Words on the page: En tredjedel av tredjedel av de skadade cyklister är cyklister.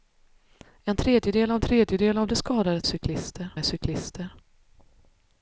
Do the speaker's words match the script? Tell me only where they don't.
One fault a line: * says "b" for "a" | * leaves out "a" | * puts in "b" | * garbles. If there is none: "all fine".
all fine